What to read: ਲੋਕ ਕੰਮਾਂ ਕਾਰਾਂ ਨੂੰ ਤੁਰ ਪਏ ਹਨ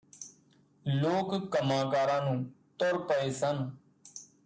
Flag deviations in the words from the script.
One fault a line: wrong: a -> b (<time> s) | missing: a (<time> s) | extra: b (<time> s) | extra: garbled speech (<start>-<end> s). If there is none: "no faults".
wrong: ਹਨ -> ਸਨ (3.3 s)